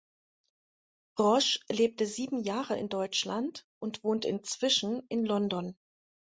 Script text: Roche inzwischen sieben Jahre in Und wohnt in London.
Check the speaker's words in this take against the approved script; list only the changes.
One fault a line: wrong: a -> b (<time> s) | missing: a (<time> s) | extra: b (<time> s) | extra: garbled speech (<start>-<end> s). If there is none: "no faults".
wrong: inzwischen -> lebte (1.7 s)
extra: Deutschland (2.9 s)
extra: inzwischen (4.2 s)